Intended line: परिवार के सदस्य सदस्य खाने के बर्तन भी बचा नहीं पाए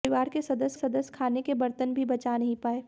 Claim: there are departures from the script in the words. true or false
false